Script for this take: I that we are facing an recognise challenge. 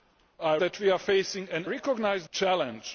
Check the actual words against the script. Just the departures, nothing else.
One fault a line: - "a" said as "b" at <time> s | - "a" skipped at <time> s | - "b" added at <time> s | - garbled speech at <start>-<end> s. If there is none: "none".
none